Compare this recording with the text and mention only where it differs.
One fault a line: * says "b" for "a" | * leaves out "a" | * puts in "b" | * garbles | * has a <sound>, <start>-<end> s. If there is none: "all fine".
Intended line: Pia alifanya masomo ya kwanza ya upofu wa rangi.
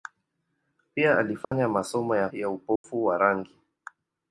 * has a dropout, 1.4-1.5 s
* leaves out "kwanza"
* has a dropout, 2.8-2.8 s